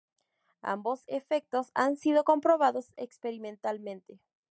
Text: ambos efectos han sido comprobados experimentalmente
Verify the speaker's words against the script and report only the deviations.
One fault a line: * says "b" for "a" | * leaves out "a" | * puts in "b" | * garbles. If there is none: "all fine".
all fine